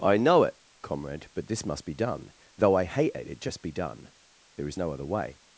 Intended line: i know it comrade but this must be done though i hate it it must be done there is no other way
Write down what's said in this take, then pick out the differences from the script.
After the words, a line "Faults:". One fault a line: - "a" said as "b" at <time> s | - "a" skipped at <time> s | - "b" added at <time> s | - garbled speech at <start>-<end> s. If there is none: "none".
i know it comrade but this must be done though i hate it it just be done there is no other way
Faults:
- "must" said as "just" at 3.4 s